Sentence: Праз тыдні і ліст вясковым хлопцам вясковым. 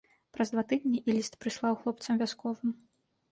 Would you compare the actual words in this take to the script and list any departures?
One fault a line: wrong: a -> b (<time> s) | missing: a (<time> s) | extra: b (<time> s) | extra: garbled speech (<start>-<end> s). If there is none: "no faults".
extra: два (0.5 s)
wrong: вясковым -> прыслаў (1.5 s)